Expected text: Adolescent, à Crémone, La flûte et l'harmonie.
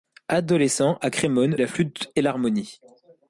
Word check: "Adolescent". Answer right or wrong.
right